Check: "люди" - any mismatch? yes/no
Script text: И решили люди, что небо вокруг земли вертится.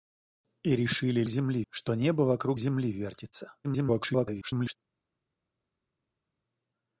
yes